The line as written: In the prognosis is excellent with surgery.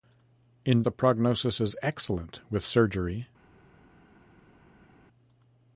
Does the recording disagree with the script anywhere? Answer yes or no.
no